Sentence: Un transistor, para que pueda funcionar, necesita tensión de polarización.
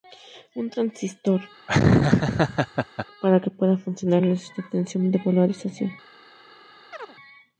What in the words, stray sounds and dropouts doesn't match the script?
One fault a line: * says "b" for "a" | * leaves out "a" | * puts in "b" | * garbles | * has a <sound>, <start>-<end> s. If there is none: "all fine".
* has a laugh, 1.7-3.1 s
* has a chirp, 6.9-7.2 s